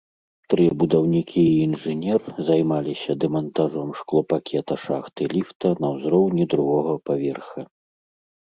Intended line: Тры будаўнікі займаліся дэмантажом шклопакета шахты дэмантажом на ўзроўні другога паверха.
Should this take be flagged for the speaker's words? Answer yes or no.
yes